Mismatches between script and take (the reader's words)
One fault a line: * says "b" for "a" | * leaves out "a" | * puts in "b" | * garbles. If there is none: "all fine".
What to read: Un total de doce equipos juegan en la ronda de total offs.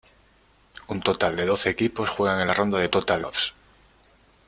all fine